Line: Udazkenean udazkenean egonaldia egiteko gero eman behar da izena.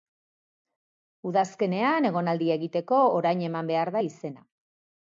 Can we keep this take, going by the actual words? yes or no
no